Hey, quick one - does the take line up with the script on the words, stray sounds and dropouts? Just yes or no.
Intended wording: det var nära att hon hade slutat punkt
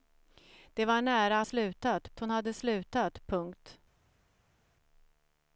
no